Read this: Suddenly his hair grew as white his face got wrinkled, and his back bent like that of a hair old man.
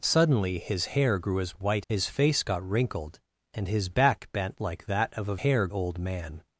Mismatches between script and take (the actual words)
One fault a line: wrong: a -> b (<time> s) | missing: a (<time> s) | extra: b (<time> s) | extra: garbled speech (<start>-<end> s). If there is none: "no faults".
no faults